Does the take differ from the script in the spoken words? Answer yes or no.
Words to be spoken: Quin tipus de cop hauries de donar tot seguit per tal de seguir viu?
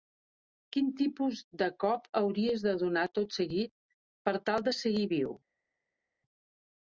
no